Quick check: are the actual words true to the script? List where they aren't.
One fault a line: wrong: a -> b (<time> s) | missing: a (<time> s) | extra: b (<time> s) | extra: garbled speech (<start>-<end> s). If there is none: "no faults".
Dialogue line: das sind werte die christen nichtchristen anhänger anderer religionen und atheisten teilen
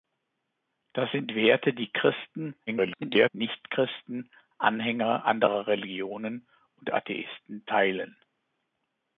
extra: garbled speech (2.7-3.3 s)